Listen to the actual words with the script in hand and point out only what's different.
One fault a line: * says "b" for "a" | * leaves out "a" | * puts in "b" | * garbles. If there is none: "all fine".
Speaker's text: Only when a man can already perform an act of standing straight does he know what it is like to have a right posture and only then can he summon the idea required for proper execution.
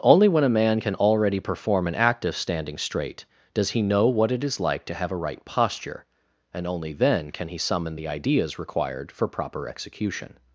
* says "ideas" for "idea"